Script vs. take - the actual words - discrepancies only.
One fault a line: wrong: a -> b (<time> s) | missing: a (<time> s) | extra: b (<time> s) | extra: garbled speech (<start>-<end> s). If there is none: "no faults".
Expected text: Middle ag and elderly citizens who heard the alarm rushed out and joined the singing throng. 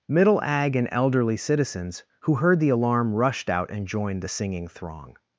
no faults